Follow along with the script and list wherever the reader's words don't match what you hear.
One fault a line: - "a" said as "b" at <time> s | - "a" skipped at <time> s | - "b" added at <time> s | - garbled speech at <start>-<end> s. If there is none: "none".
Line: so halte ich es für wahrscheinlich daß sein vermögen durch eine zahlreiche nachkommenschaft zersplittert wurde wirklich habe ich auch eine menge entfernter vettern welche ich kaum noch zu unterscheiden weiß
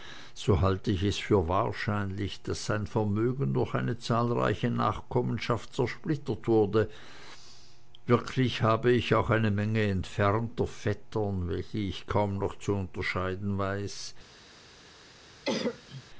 none